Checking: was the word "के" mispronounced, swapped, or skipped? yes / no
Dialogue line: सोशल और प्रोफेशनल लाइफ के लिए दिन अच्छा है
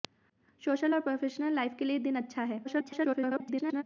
no